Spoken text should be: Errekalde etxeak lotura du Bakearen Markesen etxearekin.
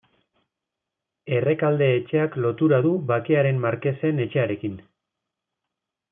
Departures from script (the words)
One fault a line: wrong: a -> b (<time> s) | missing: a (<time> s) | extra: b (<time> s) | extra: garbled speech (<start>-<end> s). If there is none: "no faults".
no faults